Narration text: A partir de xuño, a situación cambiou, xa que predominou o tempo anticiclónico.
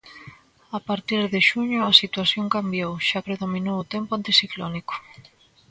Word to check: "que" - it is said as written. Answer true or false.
false